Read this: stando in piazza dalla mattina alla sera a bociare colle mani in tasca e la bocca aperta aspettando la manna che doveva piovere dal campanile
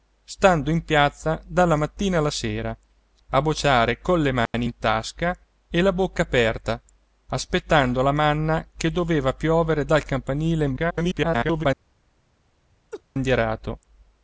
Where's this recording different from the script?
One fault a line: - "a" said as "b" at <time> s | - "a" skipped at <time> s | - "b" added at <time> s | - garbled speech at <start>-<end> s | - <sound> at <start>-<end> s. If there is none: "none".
- dropout at 4.5-4.5 s
- garbled speech at 10.8-11.7 s
- laugh at 12.9-13.0 s